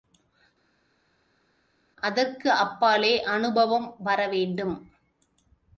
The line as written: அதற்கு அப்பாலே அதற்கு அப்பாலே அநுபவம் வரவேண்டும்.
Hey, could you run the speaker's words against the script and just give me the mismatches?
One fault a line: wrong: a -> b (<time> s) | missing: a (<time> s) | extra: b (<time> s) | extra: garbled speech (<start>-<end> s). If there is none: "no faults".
missing: அதற்கு அப்பாலே (3.2 s)